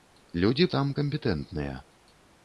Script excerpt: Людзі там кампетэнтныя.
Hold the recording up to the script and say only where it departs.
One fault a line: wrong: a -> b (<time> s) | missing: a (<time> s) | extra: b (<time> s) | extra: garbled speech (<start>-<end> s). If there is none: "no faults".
no faults